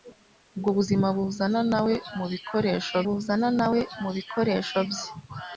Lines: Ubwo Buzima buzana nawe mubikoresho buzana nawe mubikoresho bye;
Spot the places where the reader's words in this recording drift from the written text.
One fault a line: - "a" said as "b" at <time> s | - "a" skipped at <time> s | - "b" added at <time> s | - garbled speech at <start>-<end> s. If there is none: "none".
none